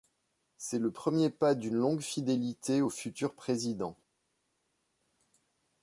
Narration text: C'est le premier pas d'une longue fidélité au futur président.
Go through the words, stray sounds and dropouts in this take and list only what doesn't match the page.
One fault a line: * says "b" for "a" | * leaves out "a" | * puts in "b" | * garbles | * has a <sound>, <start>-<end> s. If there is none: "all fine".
all fine